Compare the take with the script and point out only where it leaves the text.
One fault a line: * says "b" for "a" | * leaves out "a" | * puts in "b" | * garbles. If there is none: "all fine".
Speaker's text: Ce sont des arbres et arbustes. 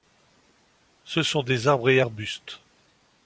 all fine